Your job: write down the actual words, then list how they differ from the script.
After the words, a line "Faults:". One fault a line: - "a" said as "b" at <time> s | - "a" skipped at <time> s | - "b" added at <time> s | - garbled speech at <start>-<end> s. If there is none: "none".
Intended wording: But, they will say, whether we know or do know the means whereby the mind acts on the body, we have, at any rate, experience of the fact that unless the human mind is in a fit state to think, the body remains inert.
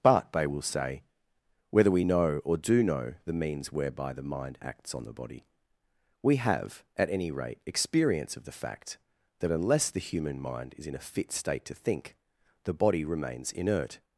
But, they will say, whether we know or do know the means whereby the mind acts on the body, we have, at any rate, experience of the fact that unless the human mind is in a fit state to think, the body remains inert.
Faults:
none